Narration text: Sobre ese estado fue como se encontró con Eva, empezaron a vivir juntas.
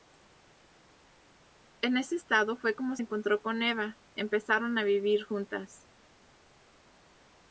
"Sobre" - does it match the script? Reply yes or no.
no